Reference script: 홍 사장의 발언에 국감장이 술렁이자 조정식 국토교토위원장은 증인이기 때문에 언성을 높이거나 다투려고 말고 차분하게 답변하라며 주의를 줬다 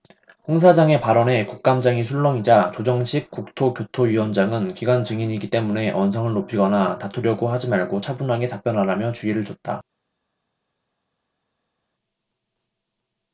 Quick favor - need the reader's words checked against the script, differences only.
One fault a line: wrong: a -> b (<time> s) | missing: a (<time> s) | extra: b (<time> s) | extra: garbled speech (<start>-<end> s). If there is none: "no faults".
extra: 기관 (4.7 s)
extra: 하지 (7.5 s)